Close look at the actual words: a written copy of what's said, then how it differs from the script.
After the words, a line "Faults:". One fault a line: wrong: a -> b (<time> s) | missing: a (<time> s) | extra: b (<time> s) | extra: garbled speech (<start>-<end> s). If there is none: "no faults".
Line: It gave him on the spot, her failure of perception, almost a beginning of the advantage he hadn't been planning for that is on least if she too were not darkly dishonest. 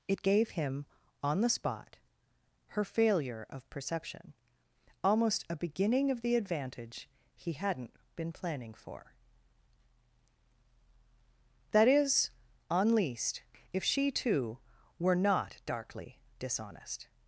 It gave him on the spot, her failure of perception, almost a beginning of the advantage he hadn't been planning for that is on least if she too were not darkly dishonest.
Faults:
no faults